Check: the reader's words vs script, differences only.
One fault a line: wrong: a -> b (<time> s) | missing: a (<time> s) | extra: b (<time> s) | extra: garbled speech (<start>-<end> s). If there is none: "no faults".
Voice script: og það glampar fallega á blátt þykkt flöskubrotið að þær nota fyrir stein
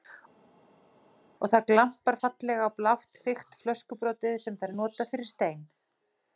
wrong: að -> sem (4.5 s)